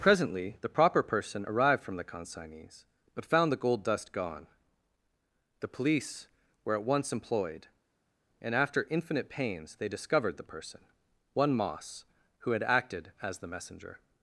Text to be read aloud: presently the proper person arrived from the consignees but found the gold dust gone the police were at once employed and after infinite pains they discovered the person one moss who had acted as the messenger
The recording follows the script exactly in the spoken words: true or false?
true